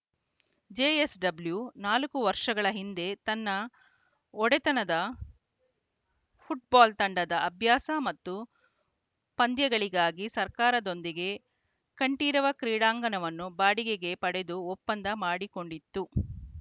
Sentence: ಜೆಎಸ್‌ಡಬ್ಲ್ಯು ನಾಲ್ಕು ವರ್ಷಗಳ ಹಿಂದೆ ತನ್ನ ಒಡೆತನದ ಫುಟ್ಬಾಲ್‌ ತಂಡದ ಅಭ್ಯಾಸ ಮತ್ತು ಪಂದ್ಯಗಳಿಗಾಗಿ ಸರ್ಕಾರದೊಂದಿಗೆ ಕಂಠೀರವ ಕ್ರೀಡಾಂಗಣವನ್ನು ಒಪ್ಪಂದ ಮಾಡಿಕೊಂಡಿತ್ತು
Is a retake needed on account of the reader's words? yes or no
yes